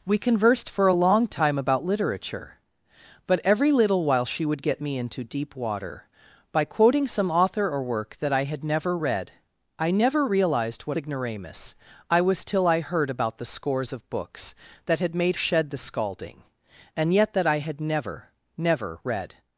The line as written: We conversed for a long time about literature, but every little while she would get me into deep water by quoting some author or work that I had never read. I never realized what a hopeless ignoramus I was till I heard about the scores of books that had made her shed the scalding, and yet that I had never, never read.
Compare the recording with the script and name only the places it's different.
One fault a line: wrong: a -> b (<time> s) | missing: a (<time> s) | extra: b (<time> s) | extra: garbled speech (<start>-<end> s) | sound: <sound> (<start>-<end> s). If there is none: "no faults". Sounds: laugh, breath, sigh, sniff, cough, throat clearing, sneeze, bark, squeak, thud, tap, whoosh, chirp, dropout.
missing: a hopeless (11.0 s)
missing: her (15.4 s)